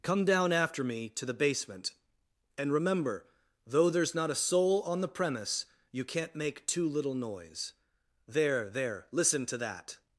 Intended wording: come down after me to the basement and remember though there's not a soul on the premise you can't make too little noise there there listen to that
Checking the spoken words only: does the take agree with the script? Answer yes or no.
yes